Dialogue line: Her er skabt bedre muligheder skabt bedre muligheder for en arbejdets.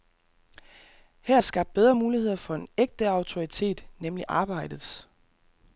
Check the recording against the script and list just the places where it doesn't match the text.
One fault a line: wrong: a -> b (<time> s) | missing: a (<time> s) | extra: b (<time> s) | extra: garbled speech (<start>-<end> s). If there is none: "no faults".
wrong: skabt bedre muligheder for en -> for en ægte autoritet nemlig (2.4 s)